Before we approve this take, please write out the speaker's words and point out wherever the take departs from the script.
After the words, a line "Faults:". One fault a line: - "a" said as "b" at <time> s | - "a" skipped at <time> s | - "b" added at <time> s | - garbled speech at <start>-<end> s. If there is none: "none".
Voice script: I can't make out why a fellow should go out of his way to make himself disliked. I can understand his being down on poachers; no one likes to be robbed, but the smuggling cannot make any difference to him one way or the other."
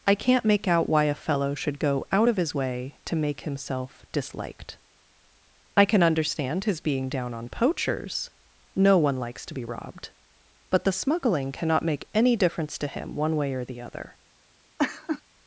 I can't make out why a fellow should go out of his way to make himself disliked. I can understand his being down on poachers; no one likes to be robbed, but the smuggling cannot make any difference to him one way or the other."
Faults:
none